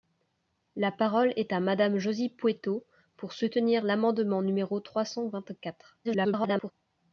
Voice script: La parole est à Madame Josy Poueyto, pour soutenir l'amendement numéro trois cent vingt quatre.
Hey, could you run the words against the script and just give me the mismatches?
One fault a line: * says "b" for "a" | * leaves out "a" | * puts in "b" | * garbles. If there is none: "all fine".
* garbles